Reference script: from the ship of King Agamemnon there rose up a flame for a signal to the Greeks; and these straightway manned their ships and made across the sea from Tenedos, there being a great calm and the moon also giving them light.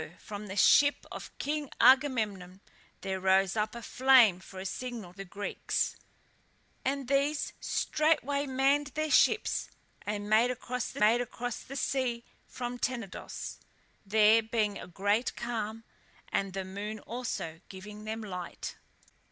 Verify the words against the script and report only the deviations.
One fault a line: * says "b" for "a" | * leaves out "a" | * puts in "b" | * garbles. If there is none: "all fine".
* leaves out "to"
* puts in "made across the"